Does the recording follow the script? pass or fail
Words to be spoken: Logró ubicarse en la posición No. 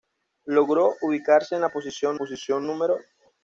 fail